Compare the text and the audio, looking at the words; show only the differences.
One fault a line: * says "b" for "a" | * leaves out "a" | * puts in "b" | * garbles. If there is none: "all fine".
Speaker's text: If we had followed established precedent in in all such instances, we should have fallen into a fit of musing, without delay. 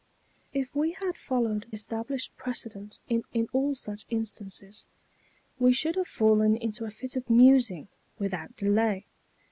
all fine